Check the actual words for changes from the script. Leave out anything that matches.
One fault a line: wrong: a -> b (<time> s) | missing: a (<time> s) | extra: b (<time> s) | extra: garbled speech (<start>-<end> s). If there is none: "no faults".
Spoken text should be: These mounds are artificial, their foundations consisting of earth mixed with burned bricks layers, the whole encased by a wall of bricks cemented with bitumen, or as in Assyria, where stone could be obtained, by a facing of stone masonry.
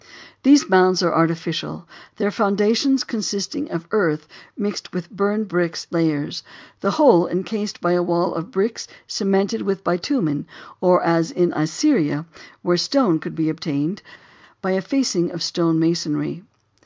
no faults